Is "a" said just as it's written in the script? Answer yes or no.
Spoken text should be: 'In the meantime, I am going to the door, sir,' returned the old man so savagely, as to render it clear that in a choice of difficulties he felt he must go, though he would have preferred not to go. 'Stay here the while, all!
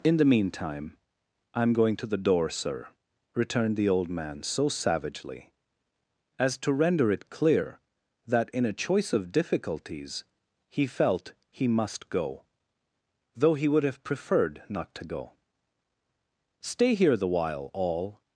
yes